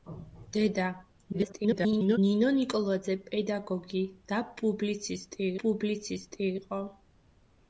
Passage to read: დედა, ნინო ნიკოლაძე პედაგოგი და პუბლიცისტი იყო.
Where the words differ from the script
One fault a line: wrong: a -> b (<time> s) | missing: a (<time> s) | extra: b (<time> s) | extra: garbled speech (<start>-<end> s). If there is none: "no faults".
extra: garbled speech (1.3-2.2 s)
extra: პუბლიცისტი (5.6 s)